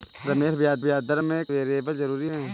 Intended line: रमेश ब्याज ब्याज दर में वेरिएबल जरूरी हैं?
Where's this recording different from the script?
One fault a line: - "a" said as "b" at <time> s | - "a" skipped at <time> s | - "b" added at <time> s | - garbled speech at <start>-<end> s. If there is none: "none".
none